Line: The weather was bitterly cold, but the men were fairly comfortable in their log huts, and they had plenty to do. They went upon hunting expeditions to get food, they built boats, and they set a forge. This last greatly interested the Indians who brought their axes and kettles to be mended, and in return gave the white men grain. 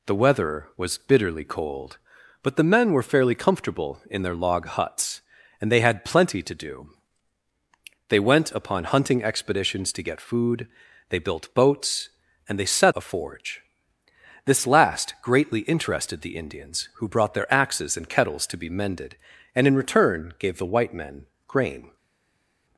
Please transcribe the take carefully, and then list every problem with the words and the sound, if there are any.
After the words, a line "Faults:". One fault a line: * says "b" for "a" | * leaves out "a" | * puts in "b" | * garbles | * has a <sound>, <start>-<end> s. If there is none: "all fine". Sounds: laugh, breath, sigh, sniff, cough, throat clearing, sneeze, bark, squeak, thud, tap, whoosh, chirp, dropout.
The weather was bitterly cold, but the men were fairly comfortable in their log huts, and they had plenty to do. They went upon hunting expeditions to get food, they built boats, and they set a forge. This last greatly interested the Indians who brought their axes and kettles to be mended, and in return gave the white men grain.
Faults:
all fine